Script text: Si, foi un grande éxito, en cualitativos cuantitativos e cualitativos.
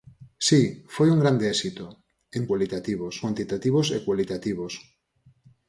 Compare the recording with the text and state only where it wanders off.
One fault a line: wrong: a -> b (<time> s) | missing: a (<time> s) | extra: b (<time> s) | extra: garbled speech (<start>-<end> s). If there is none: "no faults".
no faults